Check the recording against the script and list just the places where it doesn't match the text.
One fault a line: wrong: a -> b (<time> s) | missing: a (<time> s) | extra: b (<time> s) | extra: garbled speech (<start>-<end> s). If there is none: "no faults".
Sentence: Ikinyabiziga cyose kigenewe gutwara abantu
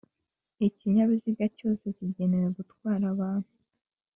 no faults